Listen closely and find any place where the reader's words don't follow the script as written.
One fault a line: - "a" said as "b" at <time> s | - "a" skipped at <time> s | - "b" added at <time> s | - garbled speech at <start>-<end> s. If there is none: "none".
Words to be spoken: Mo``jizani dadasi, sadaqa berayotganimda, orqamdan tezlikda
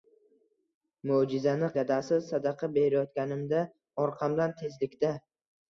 none